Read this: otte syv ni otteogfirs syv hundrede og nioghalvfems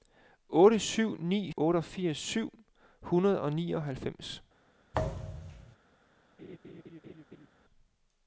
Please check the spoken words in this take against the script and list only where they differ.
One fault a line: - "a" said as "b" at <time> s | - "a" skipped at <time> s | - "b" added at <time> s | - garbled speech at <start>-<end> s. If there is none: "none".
none